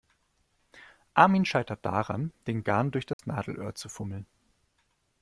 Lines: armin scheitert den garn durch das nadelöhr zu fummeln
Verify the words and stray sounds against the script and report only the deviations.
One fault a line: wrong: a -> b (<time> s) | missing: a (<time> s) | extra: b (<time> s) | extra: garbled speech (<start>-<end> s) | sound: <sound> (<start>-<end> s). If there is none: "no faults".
extra: daran (1.9 s)
sound: dropout (3.1-3.2 s)